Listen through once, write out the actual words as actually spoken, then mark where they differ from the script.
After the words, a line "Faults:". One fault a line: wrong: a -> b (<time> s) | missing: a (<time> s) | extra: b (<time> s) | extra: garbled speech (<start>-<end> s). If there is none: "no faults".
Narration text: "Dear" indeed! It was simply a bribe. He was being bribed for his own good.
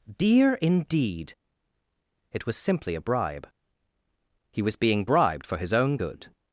"Dear" indeed! It was simply a bribe. He was being bribed for his own good.
Faults:
no faults